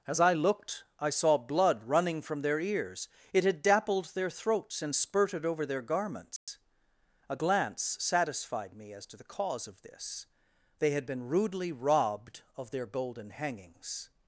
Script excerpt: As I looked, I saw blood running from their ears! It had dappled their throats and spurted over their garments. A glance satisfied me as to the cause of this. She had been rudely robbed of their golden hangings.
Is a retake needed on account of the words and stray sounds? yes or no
yes